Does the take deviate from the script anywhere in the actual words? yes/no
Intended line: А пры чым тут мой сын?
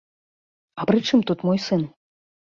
no